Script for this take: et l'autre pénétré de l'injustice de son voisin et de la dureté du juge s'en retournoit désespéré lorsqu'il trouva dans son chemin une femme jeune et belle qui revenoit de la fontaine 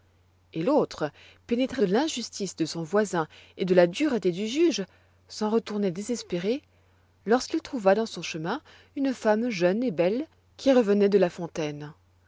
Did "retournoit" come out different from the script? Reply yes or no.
no